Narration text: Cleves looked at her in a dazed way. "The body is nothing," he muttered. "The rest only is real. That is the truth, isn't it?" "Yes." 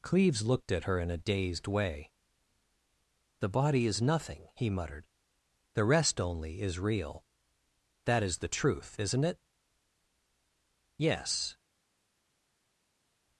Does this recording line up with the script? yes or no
yes